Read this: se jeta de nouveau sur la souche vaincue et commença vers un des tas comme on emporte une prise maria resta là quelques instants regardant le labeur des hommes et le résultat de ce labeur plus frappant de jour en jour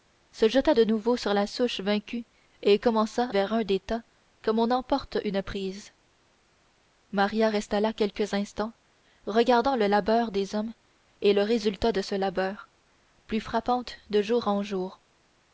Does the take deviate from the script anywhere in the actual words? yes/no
no